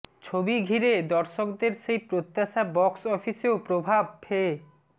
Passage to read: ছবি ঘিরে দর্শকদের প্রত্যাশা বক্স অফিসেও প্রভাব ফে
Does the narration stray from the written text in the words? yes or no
yes